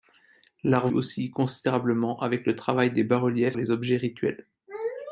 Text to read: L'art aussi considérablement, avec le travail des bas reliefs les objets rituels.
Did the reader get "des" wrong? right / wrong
right